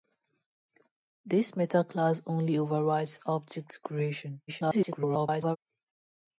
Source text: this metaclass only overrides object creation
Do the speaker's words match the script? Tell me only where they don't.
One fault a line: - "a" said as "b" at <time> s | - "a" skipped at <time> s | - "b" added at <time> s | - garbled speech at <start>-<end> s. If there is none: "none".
- garbled speech at 4.5-5.6 s